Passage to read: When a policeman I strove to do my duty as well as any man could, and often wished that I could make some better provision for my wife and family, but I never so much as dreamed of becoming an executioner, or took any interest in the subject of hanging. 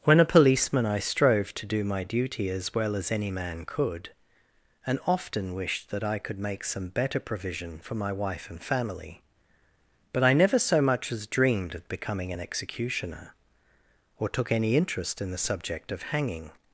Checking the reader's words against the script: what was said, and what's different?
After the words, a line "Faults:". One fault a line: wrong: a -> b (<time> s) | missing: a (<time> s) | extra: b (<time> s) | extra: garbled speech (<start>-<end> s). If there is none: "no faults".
When a policeman I strove to do my duty as well as any man could, and often wished that I could make some better provision for my wife and family, but I never so much as dreamed of becoming an executioner, or took any interest in the subject of hanging.
Faults:
no faults